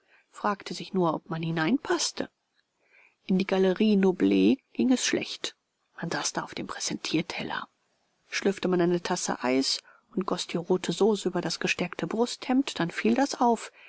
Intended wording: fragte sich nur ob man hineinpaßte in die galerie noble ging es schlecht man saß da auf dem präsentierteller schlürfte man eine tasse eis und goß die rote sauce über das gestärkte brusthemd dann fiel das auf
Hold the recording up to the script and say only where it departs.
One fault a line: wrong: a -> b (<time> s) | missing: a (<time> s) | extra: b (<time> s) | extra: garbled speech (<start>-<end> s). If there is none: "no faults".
no faults